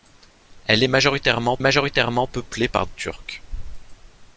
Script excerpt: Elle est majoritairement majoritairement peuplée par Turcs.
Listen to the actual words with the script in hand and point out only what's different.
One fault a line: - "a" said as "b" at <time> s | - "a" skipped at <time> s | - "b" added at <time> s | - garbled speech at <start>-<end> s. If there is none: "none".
none